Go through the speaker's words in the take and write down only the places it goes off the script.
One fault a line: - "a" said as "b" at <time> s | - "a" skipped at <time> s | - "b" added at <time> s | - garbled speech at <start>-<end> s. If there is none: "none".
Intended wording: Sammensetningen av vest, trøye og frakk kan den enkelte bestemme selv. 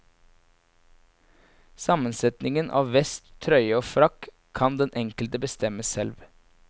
none